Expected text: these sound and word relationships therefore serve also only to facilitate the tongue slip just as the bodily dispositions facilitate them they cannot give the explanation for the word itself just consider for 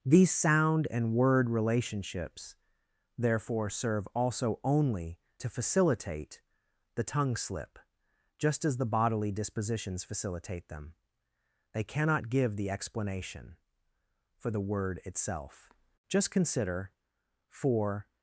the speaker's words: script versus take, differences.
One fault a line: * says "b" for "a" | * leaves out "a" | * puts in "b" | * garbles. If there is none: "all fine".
all fine